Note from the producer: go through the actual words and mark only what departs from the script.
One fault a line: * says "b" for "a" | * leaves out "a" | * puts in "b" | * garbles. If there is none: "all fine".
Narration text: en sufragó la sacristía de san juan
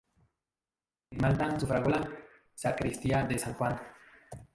* puts in "malta"